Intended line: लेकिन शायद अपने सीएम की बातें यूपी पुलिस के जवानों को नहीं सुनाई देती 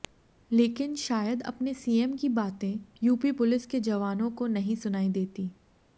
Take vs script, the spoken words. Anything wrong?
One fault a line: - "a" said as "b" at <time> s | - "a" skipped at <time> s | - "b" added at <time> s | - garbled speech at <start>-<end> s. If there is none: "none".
none